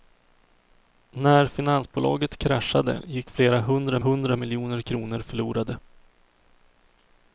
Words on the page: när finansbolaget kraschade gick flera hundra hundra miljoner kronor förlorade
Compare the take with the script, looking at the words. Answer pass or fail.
pass